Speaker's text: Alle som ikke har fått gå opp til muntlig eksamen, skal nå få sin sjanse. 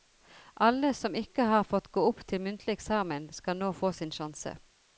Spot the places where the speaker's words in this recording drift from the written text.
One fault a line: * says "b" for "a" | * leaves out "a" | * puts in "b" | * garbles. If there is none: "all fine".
all fine